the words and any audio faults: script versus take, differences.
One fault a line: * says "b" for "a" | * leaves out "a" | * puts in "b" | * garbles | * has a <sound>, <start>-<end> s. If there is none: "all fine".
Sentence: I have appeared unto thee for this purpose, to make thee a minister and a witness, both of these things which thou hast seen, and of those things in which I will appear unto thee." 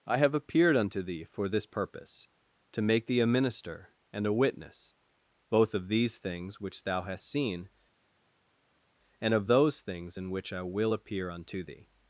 all fine